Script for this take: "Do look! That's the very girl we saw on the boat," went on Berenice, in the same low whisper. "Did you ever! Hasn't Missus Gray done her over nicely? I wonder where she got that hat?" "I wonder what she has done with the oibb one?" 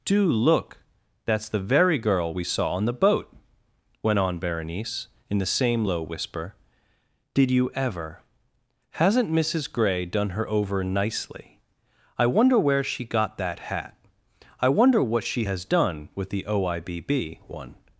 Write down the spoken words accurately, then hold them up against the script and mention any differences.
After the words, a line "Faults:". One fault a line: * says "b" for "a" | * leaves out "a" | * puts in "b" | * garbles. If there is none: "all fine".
"Do look! That's the very girl we saw on the boat," went on Berenice, in the same low whisper. "Did you ever! Hasn't Missus Gray done her over nicely? I wonder where she got that hat?" "I wonder what she has done with the oibb one?"
Faults:
all fine